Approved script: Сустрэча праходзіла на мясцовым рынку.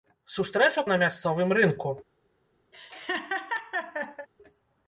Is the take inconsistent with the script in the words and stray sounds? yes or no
yes